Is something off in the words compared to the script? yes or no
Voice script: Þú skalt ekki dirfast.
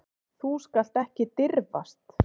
no